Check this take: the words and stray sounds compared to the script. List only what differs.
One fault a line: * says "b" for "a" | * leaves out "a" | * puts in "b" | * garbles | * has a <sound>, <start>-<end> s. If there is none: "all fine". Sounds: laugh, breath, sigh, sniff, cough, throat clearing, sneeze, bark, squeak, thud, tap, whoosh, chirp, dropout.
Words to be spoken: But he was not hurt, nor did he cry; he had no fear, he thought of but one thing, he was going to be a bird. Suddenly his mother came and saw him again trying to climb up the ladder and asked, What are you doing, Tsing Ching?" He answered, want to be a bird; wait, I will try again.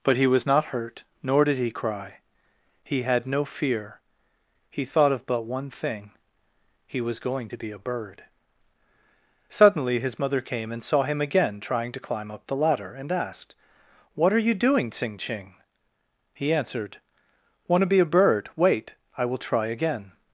all fine